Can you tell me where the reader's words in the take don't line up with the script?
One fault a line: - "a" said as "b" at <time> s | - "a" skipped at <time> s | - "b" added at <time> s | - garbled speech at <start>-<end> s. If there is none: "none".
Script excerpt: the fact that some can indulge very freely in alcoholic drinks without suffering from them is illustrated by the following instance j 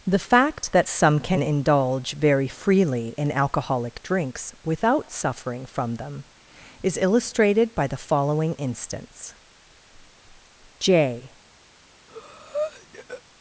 none